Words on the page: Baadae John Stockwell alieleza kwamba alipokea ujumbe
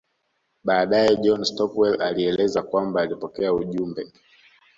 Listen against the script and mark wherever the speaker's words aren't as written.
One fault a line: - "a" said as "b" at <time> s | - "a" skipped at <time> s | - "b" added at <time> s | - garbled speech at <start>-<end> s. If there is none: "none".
none